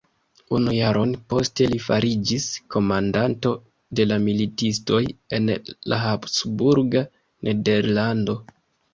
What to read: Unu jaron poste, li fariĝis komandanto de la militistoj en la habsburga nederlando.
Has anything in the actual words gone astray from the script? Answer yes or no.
no